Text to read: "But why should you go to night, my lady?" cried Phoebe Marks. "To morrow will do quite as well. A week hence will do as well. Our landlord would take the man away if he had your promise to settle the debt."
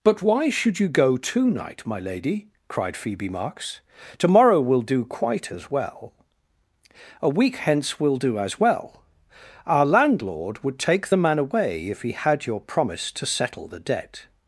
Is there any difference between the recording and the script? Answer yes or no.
no